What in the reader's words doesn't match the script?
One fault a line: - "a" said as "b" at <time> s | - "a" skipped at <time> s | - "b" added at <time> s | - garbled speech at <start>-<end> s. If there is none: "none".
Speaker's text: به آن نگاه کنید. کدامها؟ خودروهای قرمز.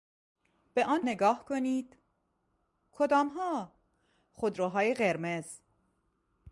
none